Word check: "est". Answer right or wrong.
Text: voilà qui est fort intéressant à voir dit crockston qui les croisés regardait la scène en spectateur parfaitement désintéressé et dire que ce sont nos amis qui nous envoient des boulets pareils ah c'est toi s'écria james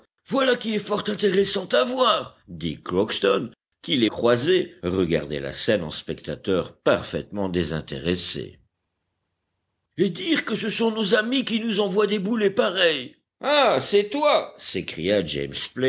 right